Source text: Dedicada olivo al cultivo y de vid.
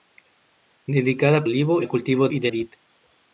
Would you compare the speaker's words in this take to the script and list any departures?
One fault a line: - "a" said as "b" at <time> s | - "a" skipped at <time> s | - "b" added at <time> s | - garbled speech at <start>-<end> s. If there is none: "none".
none